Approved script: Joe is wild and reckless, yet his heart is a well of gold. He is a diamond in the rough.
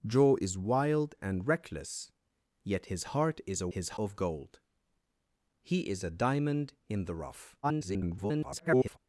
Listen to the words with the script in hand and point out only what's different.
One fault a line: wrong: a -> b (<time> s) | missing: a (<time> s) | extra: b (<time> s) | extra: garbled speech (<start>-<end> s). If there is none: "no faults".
wrong: well -> his (3.7 s)
extra: garbled speech (7.6-9.0 s)